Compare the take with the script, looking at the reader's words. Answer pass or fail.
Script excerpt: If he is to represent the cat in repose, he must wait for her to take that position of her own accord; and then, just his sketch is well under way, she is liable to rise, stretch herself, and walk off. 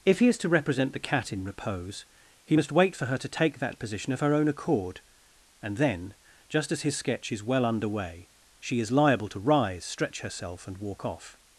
fail